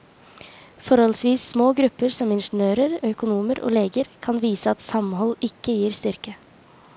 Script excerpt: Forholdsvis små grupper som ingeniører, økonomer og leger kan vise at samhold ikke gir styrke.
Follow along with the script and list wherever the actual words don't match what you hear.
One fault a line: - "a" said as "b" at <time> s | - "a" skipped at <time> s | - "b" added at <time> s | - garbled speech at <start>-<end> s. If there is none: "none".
none